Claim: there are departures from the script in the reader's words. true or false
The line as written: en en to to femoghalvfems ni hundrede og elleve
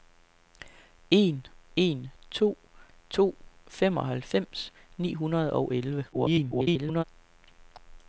true